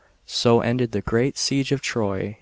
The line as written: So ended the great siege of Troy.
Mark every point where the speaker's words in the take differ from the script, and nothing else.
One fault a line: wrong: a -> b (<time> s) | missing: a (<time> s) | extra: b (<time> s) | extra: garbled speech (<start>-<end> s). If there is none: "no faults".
no faults